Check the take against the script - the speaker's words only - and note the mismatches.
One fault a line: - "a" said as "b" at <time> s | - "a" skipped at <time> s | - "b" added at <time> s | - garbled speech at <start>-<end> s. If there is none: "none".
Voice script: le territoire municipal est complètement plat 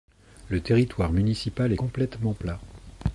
none